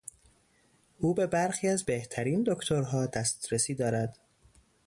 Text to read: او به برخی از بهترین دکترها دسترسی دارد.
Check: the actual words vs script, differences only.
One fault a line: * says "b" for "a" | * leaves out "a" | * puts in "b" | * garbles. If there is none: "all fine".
all fine